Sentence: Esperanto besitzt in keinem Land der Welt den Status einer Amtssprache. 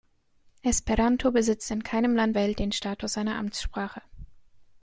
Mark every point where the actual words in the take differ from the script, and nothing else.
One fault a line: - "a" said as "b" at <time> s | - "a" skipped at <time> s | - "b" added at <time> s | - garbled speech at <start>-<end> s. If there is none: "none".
- "der" skipped at 2.4 s